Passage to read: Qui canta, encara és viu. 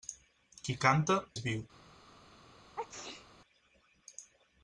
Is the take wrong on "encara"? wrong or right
wrong